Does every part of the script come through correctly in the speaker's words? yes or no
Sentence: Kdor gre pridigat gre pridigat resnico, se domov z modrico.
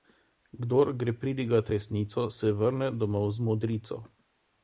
no